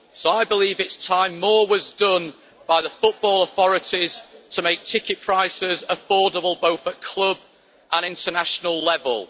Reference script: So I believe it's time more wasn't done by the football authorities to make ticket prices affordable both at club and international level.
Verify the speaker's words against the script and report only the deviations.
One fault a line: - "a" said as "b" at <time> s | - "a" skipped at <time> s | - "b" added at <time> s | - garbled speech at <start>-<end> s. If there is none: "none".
- "wasn't" said as "was" at 1.7 s